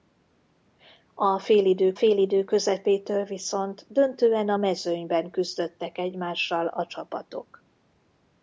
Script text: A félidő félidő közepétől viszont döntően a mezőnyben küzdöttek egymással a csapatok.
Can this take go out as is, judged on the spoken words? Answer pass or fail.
pass